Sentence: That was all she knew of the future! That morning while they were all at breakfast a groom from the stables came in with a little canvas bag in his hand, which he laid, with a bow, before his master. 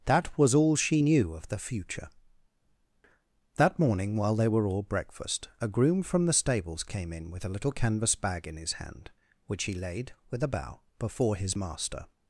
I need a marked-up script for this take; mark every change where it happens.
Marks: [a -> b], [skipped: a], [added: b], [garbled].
That was all she knew of the future! That morning while they were all [skipped: at] breakfast a groom from the stables came in with a little canvas bag in his hand, which he laid, with a bow, before his master.